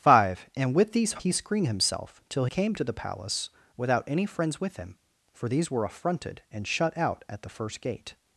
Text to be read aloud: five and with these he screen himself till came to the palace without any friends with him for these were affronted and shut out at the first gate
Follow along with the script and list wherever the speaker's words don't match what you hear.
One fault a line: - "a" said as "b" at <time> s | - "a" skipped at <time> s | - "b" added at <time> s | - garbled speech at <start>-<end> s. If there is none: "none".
none